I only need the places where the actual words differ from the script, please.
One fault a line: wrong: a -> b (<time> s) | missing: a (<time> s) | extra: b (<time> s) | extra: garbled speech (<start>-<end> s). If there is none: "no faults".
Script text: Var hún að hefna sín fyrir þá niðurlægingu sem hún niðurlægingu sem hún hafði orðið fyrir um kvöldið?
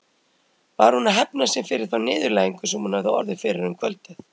missing: niðurlægingu sem hún (3.0 s)